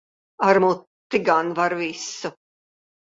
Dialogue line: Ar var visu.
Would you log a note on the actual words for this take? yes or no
yes